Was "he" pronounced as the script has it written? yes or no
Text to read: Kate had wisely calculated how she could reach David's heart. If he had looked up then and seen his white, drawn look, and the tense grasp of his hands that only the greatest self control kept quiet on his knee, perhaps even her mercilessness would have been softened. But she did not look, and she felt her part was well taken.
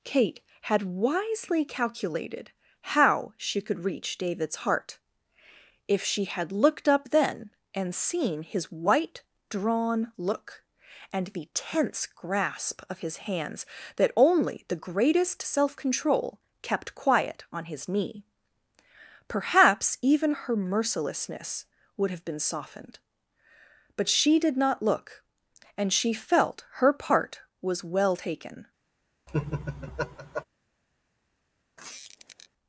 no